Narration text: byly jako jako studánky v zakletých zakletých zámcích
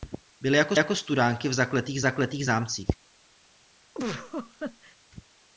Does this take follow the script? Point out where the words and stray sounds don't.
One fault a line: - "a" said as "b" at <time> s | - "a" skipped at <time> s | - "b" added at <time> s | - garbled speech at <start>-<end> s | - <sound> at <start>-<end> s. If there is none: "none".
- laugh at 3.9-5.0 s